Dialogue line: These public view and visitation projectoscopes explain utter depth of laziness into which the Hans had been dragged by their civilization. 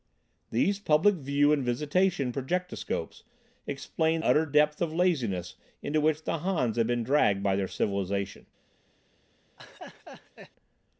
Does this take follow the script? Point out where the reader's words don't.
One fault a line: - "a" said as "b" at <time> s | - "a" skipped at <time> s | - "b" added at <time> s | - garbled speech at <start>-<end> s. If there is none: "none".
none